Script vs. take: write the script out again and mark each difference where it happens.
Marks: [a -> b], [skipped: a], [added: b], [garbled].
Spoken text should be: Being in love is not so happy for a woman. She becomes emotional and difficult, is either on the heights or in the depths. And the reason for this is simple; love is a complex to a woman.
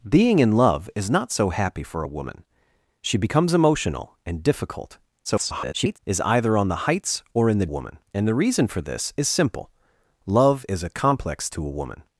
Being in love is not so happy for a woman. She becomes emotional and difficult, [garbled] is either on the heights or in the [depths. -> woman] And the reason for this is simple; love is a complex to a woman.